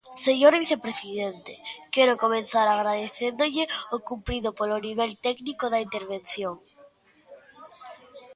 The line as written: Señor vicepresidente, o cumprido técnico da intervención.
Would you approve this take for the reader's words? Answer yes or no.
no